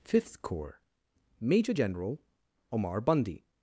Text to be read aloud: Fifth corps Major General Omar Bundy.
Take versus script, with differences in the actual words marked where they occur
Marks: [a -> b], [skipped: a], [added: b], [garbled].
Fifth corps Major General Omar Bundy.